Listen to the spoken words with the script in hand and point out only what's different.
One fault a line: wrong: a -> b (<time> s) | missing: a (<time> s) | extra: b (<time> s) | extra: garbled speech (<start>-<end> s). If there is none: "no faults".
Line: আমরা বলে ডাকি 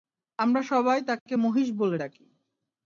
extra: সবাই তাকে মহিষ (0.6 s)